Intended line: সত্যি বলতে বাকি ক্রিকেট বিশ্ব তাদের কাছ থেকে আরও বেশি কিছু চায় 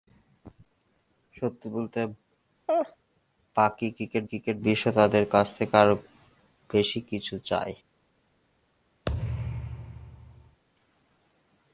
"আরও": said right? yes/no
yes